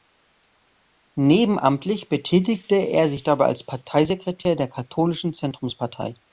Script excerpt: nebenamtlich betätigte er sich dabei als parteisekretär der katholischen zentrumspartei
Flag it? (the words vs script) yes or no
no